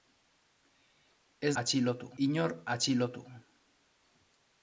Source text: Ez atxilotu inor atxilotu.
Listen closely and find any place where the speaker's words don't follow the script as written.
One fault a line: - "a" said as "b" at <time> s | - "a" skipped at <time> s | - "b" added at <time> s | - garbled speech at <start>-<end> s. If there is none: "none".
none